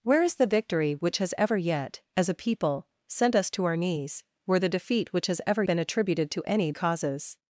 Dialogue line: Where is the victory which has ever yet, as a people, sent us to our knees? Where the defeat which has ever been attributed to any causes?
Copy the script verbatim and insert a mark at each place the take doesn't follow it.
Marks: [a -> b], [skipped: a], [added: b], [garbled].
Where is the victory which has ever yet, as a people, sent us to our knees? Where the defeat which has ever been attributed to any causes?